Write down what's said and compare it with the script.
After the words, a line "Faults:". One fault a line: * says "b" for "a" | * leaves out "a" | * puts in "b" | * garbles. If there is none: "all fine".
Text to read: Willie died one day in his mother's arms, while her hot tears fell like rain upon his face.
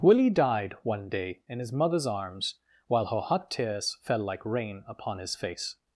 Willie died one day in his mother's arms, while her hot tears fell like rain upon his face.
Faults:
all fine